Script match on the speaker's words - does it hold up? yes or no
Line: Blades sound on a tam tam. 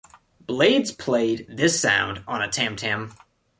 no